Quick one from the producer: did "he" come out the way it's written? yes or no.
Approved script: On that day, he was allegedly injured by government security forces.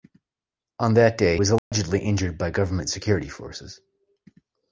no